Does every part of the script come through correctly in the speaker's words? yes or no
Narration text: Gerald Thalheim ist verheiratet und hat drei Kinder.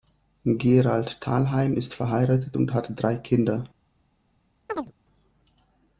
yes